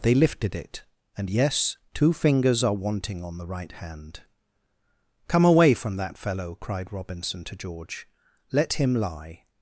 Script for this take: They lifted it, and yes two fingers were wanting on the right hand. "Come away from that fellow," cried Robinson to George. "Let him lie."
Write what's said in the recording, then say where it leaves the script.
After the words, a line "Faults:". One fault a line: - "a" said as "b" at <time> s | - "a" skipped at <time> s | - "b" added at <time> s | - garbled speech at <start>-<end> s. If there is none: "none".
They lifted it, and yes two fingers are wanting on the right hand. "Come away from that fellow," cried Robinson to George. "Let him lie."
Faults:
- "were" said as "are" at 2.6 s